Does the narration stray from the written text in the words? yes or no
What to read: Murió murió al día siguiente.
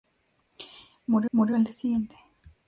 no